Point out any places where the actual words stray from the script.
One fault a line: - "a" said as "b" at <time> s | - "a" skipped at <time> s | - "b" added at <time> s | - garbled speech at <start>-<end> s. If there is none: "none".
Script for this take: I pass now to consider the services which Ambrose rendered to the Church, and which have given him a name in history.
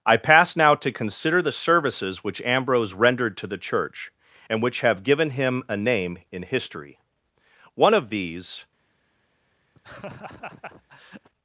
- "One of these" added at 7.7 s